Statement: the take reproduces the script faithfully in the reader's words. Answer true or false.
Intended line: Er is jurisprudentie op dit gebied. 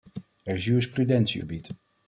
false